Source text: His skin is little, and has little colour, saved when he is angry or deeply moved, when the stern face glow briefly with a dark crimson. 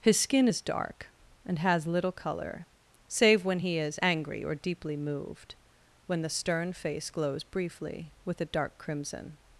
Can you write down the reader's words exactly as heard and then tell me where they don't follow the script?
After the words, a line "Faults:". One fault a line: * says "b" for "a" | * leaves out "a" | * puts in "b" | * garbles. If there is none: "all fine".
His skin is dark, and has little colour, save when he is angry or deeply moved, when the stern face glows briefly with a dark crimson.
Faults:
* says "dark" for "little"
* says "save" for "saved"
* says "glows" for "glow"